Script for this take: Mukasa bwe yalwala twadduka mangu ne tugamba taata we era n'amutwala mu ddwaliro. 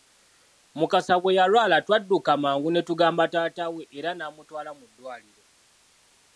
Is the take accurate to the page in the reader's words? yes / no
yes